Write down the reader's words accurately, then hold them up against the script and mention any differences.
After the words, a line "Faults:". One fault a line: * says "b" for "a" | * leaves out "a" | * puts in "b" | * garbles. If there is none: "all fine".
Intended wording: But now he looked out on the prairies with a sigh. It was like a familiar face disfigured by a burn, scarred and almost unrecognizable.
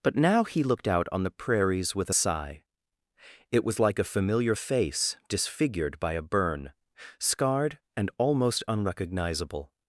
But now he looked out on the prairies with a sigh. It was like a familiar face disfigured by a burn, scarred and almost unrecognizable.
Faults:
all fine